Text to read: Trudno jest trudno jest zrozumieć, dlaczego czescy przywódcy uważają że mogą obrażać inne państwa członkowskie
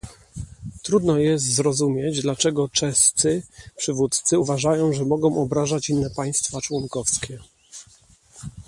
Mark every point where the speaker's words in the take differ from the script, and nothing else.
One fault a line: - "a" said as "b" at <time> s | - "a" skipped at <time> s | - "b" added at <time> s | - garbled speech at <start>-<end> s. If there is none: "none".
- "trudno jest" skipped at 1.4 s